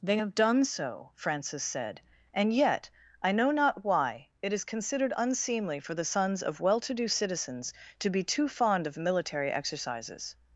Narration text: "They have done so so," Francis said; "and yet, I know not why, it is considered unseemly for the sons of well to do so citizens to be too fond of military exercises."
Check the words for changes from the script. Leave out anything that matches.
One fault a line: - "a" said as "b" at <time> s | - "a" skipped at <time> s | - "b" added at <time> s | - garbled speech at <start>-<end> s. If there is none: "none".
- "so" skipped at 1.1 s
- "so" skipped at 7.1 s